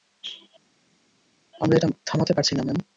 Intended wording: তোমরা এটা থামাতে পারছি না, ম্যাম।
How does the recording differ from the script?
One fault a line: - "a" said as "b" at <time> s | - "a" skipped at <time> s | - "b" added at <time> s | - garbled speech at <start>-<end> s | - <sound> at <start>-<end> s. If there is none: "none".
- "তোমরা" said as "আমরা" at 1.6 s